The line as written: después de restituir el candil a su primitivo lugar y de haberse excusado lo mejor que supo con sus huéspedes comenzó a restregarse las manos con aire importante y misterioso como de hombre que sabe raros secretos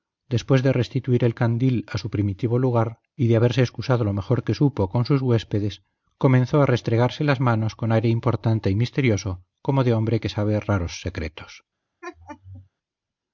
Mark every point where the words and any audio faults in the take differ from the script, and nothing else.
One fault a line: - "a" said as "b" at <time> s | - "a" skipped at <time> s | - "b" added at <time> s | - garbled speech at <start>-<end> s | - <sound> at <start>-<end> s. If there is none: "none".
- laugh at 12.0-12.7 s